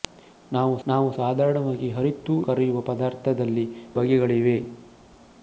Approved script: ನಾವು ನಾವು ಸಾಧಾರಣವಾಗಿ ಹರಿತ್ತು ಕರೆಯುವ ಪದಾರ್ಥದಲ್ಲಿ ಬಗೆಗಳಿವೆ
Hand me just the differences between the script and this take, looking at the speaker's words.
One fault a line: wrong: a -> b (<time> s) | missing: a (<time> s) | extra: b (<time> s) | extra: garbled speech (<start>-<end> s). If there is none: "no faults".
no faults